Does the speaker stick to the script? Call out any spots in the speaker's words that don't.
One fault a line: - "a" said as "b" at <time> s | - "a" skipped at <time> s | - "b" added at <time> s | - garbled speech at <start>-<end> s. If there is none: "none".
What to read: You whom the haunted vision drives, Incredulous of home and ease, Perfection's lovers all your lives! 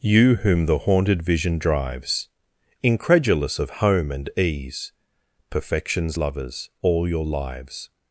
none